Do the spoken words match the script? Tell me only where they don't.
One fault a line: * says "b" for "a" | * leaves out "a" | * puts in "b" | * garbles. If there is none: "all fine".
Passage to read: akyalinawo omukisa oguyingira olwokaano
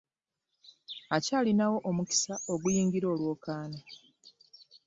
all fine